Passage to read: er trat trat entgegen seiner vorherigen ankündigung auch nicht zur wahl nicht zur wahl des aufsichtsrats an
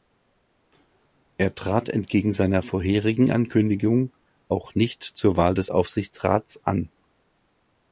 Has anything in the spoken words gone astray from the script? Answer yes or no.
yes